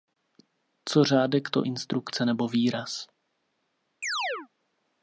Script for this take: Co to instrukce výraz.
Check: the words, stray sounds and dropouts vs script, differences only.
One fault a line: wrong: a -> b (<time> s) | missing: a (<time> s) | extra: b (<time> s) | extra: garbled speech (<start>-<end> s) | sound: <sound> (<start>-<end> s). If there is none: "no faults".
extra: řádek (1.0 s)
extra: nebo (2.2 s)
sound: chirp (4.0-4.5 s)